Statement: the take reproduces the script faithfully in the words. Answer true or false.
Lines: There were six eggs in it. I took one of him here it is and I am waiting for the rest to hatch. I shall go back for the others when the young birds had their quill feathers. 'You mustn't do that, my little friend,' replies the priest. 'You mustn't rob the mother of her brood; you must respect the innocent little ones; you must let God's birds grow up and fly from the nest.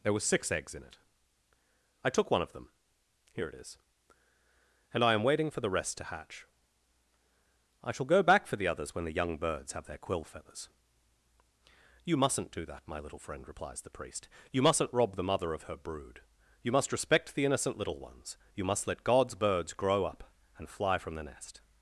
false